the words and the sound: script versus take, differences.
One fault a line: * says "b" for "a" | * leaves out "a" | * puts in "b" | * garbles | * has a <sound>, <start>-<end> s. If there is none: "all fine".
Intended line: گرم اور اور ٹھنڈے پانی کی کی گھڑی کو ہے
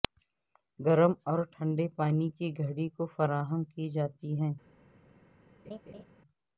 * leaves out "اور"
* leaves out "کی"
* puts in "فراہم کی جاتی"
* has a laugh, 5.6-6.0 s